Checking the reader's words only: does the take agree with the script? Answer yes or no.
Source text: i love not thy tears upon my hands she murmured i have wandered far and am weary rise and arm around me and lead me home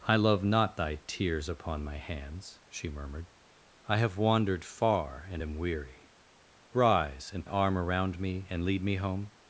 yes